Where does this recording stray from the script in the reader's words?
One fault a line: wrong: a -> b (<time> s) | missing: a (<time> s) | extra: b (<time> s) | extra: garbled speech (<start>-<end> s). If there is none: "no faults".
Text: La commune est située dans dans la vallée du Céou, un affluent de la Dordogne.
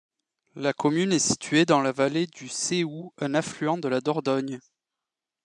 missing: dans (1.8 s)